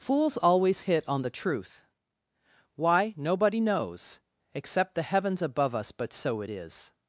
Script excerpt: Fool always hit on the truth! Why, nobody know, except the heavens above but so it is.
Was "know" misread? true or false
true